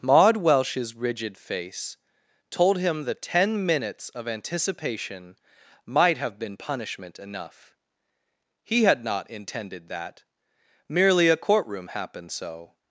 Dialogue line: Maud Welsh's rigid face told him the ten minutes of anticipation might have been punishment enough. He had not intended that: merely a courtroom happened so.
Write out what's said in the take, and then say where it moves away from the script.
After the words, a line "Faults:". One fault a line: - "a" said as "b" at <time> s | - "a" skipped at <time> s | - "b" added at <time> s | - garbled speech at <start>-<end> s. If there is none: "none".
Maud Welsh's rigid face told him the ten minutes of anticipation might have been punishment enough. He had not intended that: merely a courtroom happened so.
Faults:
none